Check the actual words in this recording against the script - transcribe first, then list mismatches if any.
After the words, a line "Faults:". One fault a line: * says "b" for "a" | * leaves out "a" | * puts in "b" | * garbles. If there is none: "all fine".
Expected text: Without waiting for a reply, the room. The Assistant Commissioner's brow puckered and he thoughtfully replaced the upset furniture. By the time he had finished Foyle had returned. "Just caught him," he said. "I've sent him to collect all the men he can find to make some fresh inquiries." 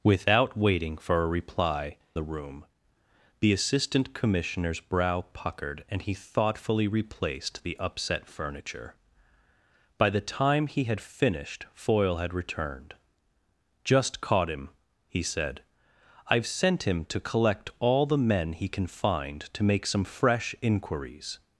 Without waiting for a reply, the room. The Assistant Commissioner's brow puckered and he thoughtfully replaced the upset furniture. By the time he had finished Foyle had returned. "Just caught him," he said. "I've sent him to collect all the men he can find to make some fresh inquiries."
Faults:
all fine